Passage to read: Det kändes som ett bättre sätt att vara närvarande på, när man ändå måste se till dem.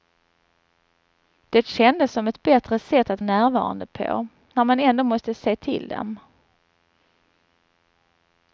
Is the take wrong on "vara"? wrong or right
wrong